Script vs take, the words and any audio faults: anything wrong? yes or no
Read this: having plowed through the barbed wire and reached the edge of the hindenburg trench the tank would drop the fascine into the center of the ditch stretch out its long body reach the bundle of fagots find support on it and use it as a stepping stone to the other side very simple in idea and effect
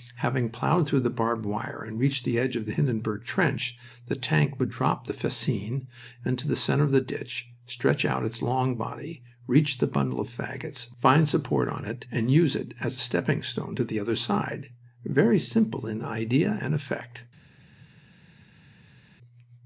no